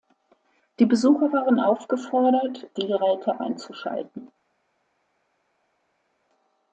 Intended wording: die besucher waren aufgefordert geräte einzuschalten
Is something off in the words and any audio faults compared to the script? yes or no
yes